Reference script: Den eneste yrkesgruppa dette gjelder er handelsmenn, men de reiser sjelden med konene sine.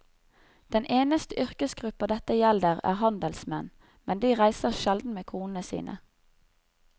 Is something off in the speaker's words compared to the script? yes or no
no